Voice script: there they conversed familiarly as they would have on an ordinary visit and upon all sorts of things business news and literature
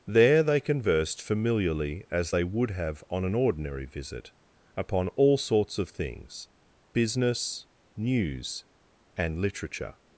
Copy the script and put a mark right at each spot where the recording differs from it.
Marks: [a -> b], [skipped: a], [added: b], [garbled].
there they conversed familiarly as they would have on an ordinary visit [skipped: and] upon all sorts of things business news and literature